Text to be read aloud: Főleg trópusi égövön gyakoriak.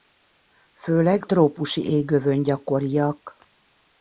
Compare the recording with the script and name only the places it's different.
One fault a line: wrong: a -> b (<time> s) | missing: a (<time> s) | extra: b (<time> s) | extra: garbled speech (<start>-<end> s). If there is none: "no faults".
no faults